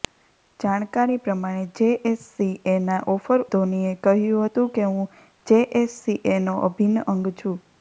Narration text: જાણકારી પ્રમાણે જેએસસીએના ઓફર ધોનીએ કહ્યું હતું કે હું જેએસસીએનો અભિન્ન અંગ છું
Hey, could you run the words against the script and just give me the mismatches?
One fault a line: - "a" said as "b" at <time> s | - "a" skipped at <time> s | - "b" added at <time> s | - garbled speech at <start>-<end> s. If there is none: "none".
none